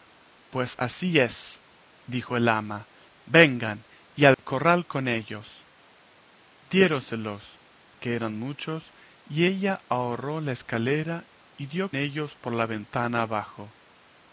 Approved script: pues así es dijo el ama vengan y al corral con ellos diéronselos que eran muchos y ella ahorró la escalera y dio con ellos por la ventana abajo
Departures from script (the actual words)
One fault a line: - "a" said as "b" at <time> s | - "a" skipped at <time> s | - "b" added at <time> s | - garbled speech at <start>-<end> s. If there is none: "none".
- "con" skipped at 11.9 s